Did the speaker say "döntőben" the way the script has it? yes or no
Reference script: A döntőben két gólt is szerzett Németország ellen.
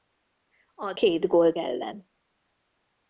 no